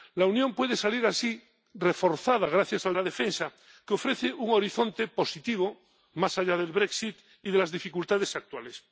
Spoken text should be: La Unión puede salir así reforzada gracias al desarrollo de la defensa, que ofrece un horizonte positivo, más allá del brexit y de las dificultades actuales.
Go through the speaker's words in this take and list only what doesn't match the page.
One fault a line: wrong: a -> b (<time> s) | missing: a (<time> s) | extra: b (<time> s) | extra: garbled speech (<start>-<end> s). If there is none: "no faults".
missing: desarrollo de (3.0 s)